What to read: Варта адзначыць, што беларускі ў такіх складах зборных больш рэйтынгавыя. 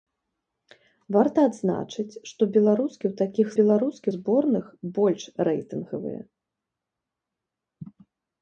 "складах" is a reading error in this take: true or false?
true